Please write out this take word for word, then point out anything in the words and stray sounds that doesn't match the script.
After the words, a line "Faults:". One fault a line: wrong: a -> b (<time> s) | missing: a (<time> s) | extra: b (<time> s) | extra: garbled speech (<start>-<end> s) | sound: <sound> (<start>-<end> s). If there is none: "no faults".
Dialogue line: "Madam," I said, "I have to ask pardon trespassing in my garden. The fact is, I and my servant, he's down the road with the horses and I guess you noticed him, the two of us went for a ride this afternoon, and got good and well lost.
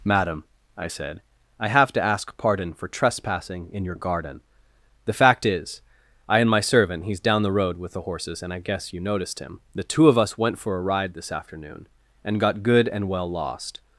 "Madam," I said, "I have to ask pardon for trespassing in your garden. The fact is, I and my servant, he's down the road with the horses and I guess you noticed him, the two of us went for a ride this afternoon, and got good and well lost.
Faults:
extra: for (2.7 s)
wrong: my -> your (3.8 s)